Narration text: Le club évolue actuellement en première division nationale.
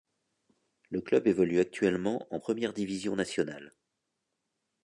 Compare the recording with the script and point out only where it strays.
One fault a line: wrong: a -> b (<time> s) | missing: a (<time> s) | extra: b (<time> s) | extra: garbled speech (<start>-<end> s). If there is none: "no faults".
no faults